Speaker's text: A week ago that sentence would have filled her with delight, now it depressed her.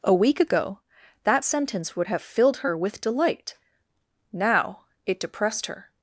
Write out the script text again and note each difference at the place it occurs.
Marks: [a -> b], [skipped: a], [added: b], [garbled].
A week ago that sentence would have filled her with delight, now it depressed her.